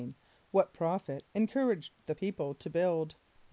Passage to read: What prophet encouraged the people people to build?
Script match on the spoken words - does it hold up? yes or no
no